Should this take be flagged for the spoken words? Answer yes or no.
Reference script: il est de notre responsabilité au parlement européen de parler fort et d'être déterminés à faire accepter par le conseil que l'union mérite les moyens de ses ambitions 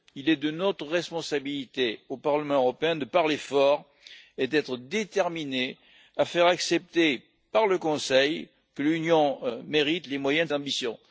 yes